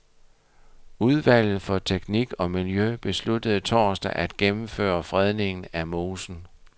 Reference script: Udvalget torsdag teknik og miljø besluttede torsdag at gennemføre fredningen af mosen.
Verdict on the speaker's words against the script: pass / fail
fail